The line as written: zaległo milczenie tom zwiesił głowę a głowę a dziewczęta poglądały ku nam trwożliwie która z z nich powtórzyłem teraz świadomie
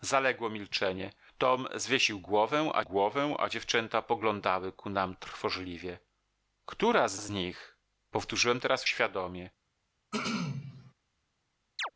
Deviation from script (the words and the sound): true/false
true